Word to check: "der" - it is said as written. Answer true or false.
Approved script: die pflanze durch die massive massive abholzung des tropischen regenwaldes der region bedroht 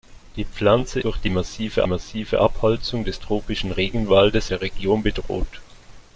true